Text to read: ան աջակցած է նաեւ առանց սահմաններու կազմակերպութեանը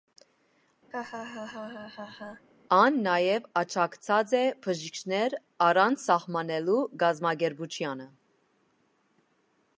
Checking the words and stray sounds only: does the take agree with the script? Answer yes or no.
no